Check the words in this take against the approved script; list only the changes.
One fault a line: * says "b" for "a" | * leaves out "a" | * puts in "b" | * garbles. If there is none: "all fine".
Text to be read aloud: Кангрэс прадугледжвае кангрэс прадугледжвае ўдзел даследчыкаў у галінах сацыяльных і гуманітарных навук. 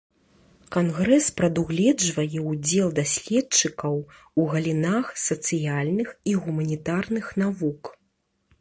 * leaves out "кангрэс прадугледжвае"